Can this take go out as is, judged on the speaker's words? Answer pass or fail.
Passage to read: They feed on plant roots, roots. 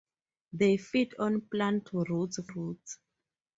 pass